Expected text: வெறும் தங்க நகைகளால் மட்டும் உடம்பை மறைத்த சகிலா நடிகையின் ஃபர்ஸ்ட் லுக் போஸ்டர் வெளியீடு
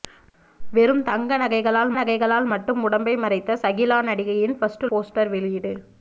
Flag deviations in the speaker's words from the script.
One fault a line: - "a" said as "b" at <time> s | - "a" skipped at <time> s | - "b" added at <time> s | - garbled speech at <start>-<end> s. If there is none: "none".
- "நகைகளால்" added at 1.9 s
- "லுக்" skipped at 4.9 s